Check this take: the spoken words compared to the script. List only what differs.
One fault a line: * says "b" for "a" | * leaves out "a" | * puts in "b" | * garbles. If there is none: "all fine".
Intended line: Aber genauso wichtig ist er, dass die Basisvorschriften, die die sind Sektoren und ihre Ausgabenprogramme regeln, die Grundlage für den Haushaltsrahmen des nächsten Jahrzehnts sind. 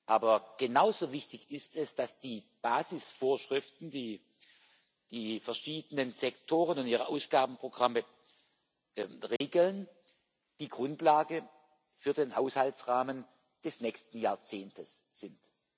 * says "es" for "er"
* says "verschiedenen" for "sind"